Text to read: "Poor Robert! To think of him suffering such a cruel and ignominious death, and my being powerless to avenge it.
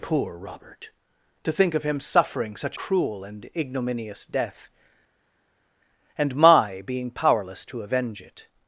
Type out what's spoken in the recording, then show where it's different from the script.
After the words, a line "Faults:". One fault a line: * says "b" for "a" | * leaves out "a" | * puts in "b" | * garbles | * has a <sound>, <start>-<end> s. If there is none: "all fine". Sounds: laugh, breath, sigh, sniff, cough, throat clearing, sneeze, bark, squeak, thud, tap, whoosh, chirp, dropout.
"Poor Robert! To think of him suffering such cruel and ignominious death, and my being powerless to avenge it.
Faults:
* leaves out "a"